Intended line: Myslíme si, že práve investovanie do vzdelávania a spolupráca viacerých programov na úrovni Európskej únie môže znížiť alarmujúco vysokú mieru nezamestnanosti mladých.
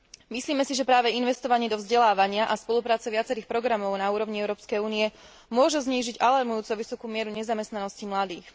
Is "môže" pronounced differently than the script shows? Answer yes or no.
no